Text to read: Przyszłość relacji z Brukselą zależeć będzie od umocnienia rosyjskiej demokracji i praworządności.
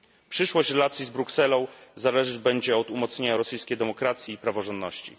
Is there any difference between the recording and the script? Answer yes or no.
no